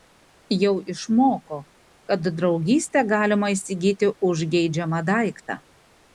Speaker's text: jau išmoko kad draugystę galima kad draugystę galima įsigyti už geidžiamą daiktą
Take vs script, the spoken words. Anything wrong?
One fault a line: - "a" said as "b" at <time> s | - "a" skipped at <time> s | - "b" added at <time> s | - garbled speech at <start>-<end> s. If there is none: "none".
- "kad draugystę galima" skipped at 3.5 s